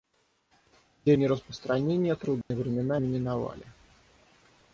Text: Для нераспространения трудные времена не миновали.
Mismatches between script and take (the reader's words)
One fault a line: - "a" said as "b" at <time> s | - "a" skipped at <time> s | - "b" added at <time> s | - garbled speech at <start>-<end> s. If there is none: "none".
none